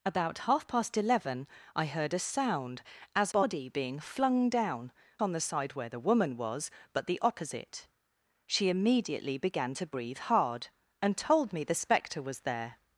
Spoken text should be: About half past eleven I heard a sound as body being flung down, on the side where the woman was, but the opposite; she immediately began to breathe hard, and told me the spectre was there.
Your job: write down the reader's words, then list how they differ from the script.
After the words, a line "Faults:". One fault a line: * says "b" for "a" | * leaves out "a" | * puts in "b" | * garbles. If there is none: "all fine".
About half past eleven I heard a sound as body being flung down, on the side where the woman was, but the opposite; she immediately began to breathe hard, and told me the spectre was there.
Faults:
all fine